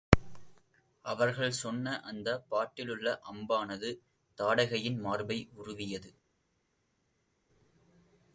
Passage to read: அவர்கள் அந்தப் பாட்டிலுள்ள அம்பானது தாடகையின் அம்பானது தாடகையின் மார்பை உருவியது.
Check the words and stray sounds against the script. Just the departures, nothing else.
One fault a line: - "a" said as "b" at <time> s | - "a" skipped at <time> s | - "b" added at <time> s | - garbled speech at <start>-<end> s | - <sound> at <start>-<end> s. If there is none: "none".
- "சொன்ன" added at 1.5 s
- "அம்பானது தாடகையின்" skipped at 5.0 s